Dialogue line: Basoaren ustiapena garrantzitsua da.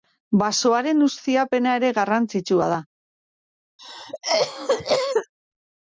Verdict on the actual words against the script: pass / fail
fail